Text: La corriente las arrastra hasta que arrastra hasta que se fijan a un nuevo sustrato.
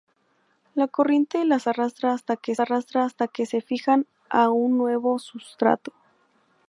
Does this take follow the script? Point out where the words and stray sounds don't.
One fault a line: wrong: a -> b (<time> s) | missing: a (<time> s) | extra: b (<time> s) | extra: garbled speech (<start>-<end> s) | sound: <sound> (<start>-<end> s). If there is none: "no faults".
no faults